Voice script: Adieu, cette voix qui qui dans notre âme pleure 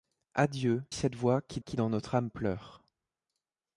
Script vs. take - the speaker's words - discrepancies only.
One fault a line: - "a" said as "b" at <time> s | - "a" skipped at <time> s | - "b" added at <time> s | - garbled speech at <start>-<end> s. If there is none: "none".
none